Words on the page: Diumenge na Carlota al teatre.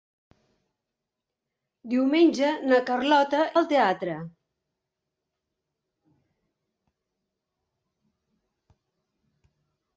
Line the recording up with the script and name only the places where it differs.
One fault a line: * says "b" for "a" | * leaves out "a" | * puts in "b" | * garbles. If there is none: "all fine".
all fine